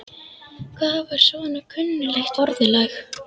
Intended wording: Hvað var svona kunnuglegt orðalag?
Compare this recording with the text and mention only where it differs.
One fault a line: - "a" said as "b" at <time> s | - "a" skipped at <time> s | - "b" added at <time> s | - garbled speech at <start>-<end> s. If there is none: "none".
none